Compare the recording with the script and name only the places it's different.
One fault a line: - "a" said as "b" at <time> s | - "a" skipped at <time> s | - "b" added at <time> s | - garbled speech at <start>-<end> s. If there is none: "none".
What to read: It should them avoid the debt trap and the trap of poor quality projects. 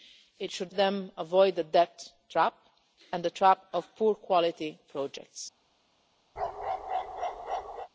none